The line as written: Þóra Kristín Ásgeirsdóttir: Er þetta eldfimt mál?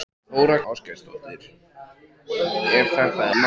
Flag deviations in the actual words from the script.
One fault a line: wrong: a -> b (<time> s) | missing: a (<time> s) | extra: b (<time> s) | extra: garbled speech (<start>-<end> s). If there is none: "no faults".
missing: Kristín (0.6 s)
missing: eldfimt (3.3 s)